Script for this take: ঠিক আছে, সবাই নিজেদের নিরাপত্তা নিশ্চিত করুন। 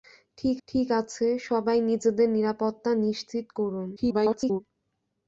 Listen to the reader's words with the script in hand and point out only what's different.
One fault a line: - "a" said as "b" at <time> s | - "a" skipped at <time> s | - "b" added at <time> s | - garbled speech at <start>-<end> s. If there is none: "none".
- "ঠিক" added at 0.7 s
- garbled speech at 4.0-4.6 s